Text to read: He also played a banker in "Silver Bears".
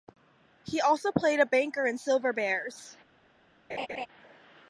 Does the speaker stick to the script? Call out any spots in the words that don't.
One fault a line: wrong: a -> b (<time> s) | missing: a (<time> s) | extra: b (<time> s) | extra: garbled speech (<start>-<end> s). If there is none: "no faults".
no faults